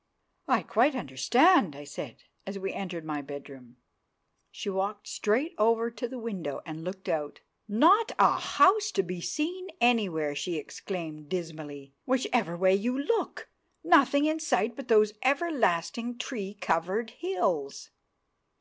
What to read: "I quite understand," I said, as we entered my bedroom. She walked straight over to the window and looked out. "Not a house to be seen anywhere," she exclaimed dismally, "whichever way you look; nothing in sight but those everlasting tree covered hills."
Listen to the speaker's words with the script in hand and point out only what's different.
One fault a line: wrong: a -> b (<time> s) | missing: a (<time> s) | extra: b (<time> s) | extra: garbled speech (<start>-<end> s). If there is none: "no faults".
no faults